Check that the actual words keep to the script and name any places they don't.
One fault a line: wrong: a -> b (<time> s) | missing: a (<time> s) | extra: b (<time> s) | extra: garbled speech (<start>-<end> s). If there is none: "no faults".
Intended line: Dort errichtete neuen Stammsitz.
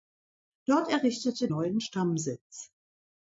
no faults